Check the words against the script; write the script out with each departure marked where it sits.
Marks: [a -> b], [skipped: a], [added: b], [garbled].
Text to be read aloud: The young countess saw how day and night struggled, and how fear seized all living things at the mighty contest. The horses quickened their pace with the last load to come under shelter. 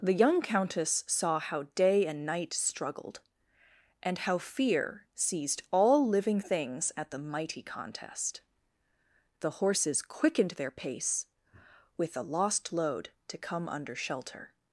The young countess saw how day and night struggled, and how fear seized all living things at the mighty contest. The horses quickened their pace with the [last -> lost] load to come under shelter.